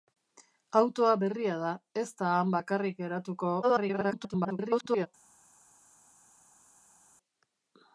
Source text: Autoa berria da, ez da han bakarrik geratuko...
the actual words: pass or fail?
fail